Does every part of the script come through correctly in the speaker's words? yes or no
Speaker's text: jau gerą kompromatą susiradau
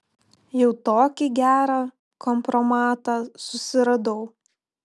no